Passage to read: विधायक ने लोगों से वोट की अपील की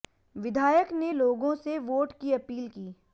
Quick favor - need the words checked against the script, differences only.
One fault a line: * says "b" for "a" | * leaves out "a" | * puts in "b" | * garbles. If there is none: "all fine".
all fine